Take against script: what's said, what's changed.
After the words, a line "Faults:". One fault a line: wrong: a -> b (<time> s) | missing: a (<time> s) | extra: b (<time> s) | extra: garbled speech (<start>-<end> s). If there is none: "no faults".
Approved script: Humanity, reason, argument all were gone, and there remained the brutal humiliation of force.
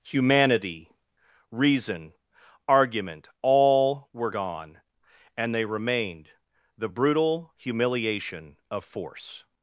Humanity, reason, argument all were gone, and they remained the brutal humiliation of force.
Faults:
wrong: there -> they (5.5 s)